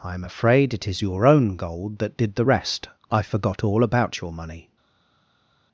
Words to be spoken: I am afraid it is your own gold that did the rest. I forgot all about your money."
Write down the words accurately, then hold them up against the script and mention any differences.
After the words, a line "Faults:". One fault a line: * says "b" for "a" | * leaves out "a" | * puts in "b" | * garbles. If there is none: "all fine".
I am afraid it is your own gold that did the rest. I forgot all about your money."
Faults:
all fine